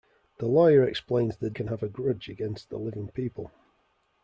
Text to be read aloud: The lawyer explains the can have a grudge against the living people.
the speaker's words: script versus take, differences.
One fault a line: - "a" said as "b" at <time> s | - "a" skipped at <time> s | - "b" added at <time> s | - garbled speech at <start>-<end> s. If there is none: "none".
none